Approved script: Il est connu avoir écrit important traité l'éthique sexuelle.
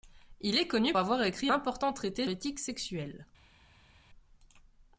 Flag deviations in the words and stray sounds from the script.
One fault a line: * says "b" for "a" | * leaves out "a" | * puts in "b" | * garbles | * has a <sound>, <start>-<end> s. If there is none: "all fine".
all fine